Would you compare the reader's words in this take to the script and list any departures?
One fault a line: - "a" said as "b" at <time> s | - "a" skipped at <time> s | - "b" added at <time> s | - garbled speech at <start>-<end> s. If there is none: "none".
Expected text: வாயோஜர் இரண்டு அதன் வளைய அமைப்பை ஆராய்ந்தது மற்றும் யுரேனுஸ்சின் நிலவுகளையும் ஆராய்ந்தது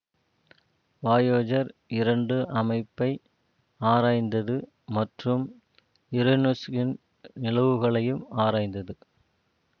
- "அதன் வளைய" skipped at 2.4 s